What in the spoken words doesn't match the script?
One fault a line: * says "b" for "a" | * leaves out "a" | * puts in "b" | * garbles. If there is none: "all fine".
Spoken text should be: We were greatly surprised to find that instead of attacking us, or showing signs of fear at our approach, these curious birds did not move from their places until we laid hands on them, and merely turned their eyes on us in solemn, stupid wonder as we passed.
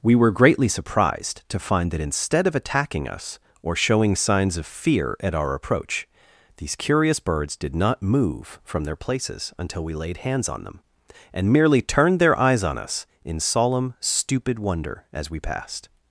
all fine